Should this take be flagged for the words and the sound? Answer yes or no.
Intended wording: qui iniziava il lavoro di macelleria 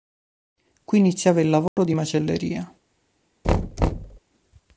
yes